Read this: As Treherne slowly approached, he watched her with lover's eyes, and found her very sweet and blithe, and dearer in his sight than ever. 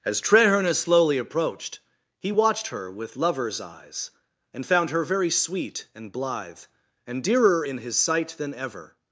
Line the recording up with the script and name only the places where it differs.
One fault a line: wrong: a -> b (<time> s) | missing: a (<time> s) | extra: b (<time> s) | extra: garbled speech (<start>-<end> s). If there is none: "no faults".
no faults